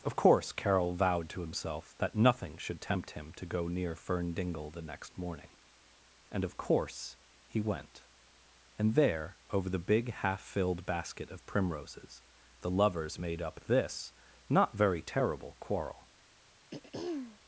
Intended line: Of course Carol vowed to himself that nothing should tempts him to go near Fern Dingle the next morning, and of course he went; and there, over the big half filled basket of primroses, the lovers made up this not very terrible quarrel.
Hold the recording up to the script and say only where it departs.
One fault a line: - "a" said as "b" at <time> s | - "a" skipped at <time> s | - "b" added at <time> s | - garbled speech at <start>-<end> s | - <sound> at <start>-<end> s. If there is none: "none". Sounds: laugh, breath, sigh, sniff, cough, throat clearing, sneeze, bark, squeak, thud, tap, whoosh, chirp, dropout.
- "tempts" said as "tempt" at 2.8 s
- throat clearing at 16.7-17.4 s